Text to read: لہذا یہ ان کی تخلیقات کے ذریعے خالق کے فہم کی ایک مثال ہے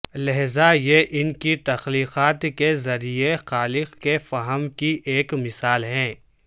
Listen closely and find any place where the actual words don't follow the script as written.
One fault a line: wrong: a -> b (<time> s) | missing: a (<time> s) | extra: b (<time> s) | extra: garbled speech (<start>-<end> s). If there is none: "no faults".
no faults